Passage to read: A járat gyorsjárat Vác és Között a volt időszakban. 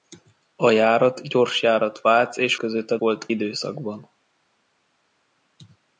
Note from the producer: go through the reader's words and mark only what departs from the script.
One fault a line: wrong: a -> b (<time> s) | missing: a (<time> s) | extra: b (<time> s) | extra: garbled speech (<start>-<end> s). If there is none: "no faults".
no faults